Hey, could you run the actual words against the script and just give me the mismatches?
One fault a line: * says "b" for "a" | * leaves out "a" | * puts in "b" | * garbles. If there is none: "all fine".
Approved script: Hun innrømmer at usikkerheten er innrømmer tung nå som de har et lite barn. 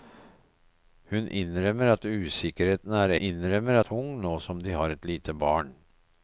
all fine